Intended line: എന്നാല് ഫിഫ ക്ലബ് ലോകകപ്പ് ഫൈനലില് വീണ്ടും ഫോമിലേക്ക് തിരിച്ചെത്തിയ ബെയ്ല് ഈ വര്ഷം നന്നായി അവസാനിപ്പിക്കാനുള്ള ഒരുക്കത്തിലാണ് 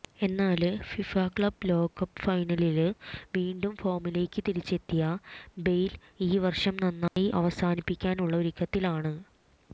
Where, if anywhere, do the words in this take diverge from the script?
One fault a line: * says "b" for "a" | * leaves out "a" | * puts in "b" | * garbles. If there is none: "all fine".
all fine